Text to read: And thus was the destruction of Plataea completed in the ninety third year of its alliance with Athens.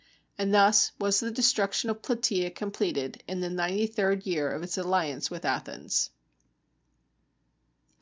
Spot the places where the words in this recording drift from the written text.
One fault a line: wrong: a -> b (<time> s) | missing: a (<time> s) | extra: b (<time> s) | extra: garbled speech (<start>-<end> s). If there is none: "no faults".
no faults